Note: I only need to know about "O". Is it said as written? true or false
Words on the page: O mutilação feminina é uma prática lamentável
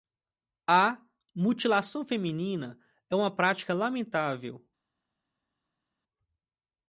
false